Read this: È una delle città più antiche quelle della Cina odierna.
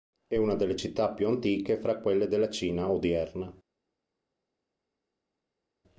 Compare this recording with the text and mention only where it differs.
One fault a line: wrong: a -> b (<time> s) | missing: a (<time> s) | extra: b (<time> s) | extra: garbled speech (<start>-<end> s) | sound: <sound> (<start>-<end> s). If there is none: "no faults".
extra: fra (1.8 s)